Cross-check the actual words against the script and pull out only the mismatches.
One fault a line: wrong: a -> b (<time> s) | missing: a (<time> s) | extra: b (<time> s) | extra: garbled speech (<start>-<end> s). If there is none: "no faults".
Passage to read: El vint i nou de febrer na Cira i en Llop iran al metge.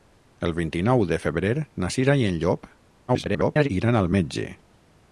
extra: garbled speech (3.1-3.7 s)